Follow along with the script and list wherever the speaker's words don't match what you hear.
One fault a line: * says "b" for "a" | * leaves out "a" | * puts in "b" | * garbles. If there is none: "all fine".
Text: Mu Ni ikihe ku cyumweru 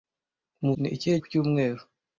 all fine